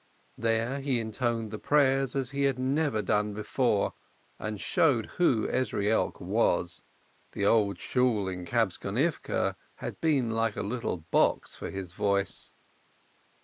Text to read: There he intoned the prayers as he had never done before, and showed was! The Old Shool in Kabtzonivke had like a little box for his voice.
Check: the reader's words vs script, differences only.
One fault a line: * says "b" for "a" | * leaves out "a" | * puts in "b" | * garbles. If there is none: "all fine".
* puts in "who Ezrielk"
* puts in "been"